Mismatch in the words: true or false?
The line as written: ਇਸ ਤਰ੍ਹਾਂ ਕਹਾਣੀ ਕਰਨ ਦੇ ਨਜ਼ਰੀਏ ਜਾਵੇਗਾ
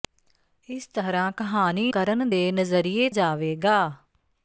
false